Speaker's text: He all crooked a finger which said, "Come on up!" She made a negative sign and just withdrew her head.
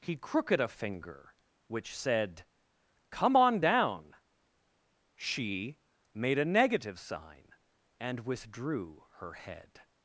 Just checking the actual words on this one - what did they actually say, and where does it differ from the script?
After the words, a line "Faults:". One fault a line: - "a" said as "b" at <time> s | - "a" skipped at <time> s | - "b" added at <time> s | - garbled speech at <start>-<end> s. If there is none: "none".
He crooked a finger which said, "Come on down!" She made a negative sign and withdrew her head.
Faults:
- "all" skipped at 0.1 s
- "up" said as "down" at 3.6 s
- "just" skipped at 8.3 s